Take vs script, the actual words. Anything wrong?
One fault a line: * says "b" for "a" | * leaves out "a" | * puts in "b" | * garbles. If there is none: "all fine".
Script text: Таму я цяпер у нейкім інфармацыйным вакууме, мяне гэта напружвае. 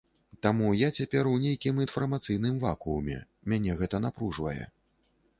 all fine